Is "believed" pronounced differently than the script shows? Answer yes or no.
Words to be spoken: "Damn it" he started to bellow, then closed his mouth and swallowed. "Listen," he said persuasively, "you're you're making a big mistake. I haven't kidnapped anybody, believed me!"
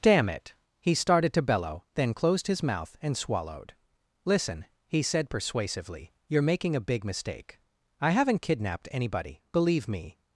yes